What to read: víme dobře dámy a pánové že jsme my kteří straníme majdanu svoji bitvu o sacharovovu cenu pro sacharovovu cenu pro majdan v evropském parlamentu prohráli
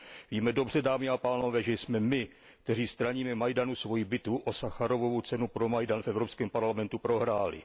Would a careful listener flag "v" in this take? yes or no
no